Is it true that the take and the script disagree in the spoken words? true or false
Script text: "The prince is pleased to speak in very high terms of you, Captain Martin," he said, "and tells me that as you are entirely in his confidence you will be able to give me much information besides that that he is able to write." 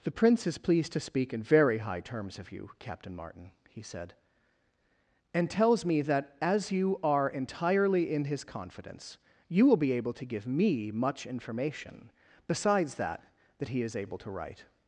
false